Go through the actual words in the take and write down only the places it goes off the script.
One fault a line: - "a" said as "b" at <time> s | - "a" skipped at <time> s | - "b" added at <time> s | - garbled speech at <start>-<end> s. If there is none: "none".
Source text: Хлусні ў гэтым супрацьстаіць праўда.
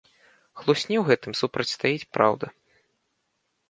none